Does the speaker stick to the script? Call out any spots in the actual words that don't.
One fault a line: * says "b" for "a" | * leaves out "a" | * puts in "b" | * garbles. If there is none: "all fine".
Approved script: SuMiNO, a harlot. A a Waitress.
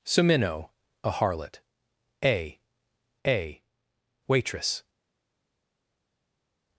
all fine